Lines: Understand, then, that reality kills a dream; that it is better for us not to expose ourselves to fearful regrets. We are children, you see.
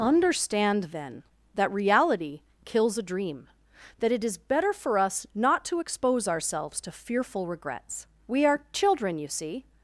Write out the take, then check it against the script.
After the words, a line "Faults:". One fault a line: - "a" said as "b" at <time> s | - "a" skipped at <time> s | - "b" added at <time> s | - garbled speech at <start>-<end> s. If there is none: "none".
Understand, then, that reality kills a dream; that it is better for us not to expose ourselves to fearful regrets. We are children, you see.
Faults:
none